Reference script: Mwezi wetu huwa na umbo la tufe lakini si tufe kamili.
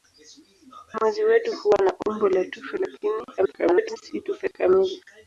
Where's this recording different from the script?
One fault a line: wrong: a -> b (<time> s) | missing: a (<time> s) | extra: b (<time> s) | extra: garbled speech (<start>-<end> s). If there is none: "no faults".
extra: garbled speech (3.4-4.0 s)